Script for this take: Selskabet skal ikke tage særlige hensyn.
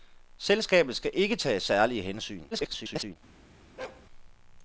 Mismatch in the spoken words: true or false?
true